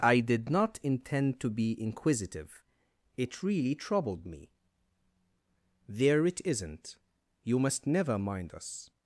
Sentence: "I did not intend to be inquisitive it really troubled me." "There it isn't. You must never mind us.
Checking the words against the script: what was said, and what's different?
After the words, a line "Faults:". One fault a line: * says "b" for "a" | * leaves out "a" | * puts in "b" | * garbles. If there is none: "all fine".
"I did not intend to be inquisitive it really troubled me." "There it isn't. You must never mind us.
Faults:
all fine